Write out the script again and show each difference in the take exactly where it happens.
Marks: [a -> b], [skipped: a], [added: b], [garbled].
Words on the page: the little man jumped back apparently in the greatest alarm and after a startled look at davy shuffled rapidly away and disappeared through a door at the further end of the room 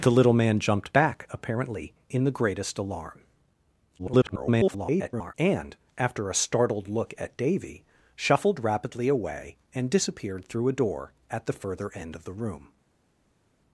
the little man jumped back apparently in the greatest alarm [garbled] and after a startled look at davy shuffled rapidly away and disappeared through a door at the further end of the room